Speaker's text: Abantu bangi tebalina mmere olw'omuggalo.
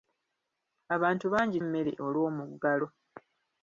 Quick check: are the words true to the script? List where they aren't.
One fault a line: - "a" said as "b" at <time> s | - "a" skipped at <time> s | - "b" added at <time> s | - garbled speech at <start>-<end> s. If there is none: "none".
- "tebalina" skipped at 1.6 s